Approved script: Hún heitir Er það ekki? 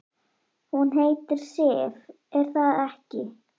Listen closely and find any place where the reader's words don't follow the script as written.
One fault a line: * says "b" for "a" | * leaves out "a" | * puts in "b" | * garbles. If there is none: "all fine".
* puts in "Sif"